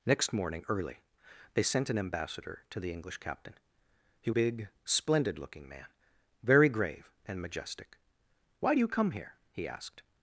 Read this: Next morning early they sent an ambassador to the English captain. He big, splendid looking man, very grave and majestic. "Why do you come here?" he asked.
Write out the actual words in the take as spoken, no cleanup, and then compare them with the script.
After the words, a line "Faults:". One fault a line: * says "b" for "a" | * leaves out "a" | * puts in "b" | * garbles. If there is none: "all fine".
Next morning early they sent an ambassador to the English captain. He big, splendid looking man, very grave and majestic. "Why do you come here?" he asked.
Faults:
all fine